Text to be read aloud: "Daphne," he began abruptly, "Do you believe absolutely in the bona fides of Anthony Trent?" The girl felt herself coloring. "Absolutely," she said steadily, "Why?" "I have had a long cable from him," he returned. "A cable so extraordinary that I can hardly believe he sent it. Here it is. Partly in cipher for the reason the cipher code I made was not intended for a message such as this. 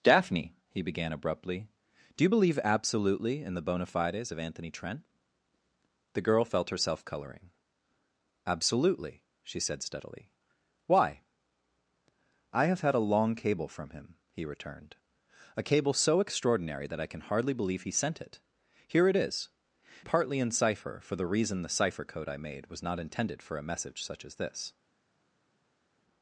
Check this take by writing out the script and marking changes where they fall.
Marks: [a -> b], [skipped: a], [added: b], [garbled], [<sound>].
"Daphne," he began abruptly, "Do you believe absolutely in the bona fides of Anthony Trent?" The girl felt herself coloring. "Absolutely," she said steadily, "Why?" "I have had a long cable from him," he returned. "A cable so extraordinary that I can hardly believe he sent it. Here it is. Partly in cipher for the reason the cipher code I made was not intended for a message such as this.